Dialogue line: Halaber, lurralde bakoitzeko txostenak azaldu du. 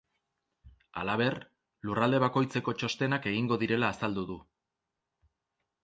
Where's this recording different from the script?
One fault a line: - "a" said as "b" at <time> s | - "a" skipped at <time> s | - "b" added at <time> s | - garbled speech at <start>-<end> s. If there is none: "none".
- "egingo direla" added at 3.4 s